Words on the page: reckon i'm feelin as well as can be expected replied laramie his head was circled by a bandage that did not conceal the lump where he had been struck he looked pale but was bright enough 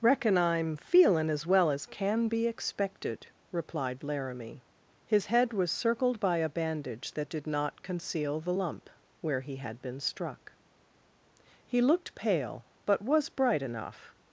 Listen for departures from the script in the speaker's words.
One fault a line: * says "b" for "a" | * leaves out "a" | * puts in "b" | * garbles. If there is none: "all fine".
all fine